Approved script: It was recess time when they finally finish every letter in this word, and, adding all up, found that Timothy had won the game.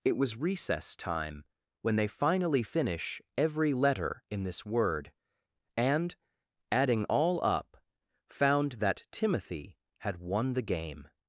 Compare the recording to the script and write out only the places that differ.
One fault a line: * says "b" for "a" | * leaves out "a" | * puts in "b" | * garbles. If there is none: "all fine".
all fine